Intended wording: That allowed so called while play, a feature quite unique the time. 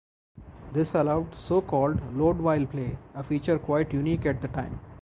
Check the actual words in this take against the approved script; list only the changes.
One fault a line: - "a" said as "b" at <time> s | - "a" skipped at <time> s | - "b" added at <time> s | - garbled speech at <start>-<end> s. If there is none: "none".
- "That" said as "This" at 0.7 s
- "load" added at 2.1 s
- "at" added at 4.3 s